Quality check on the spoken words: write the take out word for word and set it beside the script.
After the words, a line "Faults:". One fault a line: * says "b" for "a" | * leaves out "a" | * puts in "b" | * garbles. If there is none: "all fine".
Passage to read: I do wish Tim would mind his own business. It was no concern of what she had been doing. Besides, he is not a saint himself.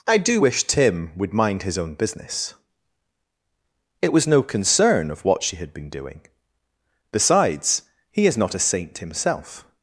I do wish Tim would mind his own business. It was no concern of what she had been doing. Besides, he is not a saint himself.
Faults:
all fine